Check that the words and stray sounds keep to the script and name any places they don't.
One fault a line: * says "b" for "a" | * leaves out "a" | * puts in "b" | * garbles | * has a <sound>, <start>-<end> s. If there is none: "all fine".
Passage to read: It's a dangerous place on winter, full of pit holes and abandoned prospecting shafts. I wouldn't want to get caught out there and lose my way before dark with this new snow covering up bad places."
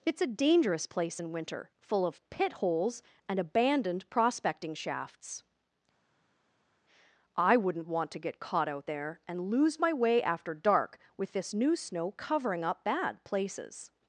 * says "in" for "on"
* says "after" for "before"